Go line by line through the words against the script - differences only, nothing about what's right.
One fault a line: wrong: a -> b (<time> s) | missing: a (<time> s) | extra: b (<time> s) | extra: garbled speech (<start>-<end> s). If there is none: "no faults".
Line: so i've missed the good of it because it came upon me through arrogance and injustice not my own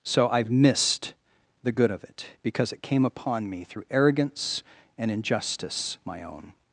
missing: not (6.0 s)